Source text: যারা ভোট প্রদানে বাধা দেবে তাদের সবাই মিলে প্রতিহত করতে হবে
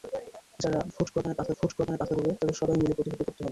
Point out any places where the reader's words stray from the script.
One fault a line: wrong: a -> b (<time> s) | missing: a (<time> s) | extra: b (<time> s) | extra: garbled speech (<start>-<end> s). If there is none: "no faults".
extra: ভোট প্রদানে বাধা (1.6 s)